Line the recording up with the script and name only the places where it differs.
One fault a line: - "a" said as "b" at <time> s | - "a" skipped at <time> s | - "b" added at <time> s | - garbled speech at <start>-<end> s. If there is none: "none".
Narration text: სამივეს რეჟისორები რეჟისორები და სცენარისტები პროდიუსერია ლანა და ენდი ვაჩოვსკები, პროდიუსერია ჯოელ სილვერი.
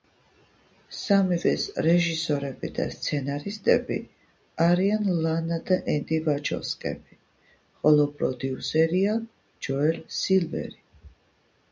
- "რეჟისორები" skipped at 2.7 s
- "პროდიუსერია" said as "არიან" at 4.7 s
- "ხოლო" added at 7.8 s